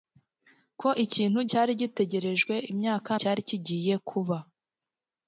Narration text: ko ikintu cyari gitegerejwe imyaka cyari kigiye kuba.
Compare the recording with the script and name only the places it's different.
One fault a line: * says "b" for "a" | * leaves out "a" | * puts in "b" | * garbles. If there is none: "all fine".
all fine